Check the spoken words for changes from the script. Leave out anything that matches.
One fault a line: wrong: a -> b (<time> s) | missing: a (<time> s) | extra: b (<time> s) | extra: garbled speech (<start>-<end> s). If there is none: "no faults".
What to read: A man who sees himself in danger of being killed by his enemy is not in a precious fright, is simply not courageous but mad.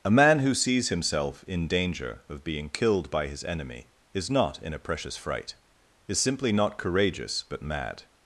no faults